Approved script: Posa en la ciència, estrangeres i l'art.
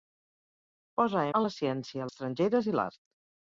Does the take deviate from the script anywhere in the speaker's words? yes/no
no